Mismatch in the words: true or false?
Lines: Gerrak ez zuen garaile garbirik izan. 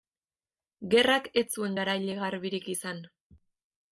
false